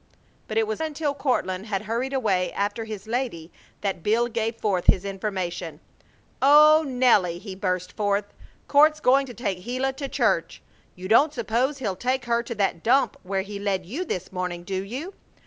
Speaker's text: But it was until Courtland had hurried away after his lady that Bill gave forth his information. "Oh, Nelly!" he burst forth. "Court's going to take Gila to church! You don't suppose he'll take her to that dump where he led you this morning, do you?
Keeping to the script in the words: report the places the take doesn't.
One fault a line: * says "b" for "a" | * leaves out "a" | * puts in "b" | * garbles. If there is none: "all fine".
all fine